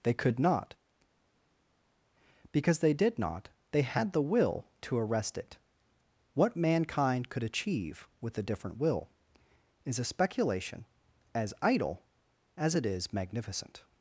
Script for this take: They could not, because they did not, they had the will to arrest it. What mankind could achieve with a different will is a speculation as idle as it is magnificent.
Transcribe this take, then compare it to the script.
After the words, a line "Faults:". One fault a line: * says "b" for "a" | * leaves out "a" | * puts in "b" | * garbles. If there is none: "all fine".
They could not, because they did not, they had the will to arrest it. What mankind could achieve with a different will is a speculation as idle as it is magnificent.
Faults:
all fine